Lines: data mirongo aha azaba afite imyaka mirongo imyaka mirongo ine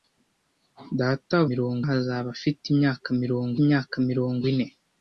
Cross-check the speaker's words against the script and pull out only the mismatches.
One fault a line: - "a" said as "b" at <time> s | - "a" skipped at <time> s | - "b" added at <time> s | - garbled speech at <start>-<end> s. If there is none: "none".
none